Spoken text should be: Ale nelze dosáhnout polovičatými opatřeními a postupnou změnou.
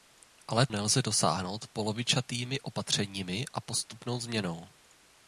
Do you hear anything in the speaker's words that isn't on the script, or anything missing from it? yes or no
no